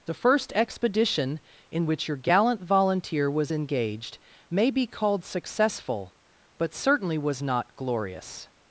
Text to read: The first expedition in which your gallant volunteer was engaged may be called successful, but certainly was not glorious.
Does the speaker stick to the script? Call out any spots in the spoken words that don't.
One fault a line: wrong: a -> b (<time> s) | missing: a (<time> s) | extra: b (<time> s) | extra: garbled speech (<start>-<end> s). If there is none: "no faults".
no faults